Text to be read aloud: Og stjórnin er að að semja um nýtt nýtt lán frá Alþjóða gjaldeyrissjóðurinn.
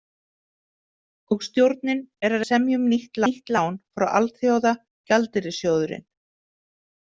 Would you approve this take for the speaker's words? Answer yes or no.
yes